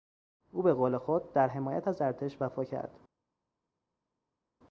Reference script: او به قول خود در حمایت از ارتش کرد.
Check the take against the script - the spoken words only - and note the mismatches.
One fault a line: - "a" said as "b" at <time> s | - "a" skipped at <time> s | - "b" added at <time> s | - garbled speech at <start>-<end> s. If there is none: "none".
- "وفا" added at 2.4 s